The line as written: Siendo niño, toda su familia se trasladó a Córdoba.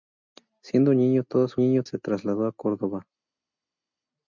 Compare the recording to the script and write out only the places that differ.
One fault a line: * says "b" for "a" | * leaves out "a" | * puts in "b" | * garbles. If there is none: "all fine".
* says "niño" for "familia"